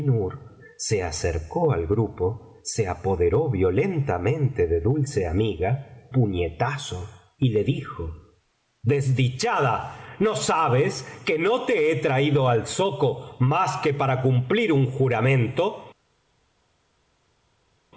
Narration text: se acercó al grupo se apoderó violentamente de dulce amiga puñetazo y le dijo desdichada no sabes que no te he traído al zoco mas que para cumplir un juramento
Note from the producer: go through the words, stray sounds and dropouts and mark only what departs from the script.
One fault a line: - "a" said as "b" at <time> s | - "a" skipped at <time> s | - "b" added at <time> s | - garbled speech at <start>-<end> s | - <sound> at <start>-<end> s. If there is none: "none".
none